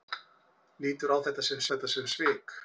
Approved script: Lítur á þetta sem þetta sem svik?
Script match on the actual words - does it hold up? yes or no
yes